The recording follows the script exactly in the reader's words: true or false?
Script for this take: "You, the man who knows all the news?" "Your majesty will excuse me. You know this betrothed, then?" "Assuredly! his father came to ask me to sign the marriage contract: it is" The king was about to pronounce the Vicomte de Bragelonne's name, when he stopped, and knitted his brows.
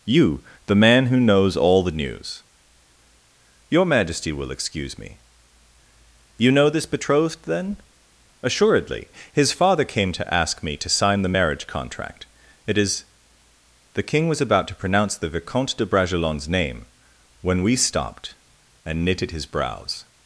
false